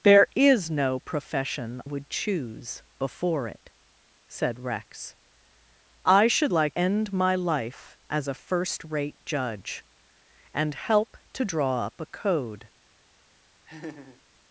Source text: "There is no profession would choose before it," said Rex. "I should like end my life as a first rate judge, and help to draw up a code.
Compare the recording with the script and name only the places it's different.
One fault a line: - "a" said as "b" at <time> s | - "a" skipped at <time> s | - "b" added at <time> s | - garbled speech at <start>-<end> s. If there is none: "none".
none